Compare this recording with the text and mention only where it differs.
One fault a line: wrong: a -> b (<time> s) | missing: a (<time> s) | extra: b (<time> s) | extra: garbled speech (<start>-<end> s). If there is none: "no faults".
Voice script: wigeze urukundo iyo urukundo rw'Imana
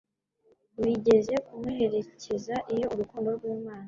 wrong: urukundo -> kumuherekeza (1.4 s)